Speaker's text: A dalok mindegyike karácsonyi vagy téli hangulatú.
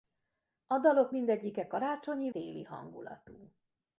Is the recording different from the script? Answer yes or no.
yes